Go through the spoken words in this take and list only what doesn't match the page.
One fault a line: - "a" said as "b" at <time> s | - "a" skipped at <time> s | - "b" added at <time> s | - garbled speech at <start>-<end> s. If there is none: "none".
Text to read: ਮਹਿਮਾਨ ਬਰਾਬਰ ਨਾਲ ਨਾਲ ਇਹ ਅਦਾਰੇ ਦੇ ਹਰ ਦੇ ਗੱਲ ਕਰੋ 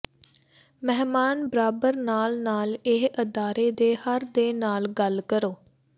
- "ਨਾਲ" added at 4.5 s